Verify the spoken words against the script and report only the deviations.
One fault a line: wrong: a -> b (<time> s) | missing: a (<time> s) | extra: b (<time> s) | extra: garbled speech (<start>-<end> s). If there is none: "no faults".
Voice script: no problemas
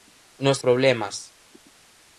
no faults